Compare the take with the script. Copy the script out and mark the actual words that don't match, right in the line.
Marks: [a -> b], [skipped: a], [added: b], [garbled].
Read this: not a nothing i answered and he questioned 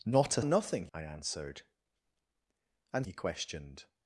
not a nothing i answered and he questioned